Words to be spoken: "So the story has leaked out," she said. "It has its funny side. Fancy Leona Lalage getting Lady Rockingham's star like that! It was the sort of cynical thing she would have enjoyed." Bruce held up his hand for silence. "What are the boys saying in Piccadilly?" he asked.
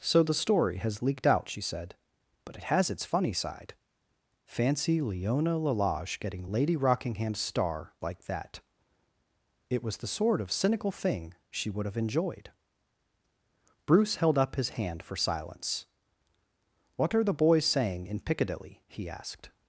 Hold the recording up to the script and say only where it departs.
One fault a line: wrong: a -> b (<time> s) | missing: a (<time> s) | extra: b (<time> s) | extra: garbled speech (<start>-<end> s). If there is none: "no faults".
extra: But (2.4 s)